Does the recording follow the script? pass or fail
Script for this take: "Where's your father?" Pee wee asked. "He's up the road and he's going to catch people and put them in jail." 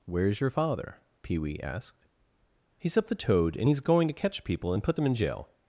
fail